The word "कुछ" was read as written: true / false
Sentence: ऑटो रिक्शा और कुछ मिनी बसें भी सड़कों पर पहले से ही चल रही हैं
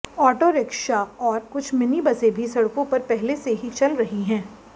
true